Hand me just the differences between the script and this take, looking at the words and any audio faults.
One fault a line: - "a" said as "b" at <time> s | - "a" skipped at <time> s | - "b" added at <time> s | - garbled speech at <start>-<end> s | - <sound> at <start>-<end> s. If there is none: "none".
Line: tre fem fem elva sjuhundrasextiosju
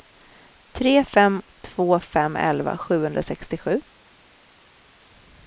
- "två" added at 1.6 s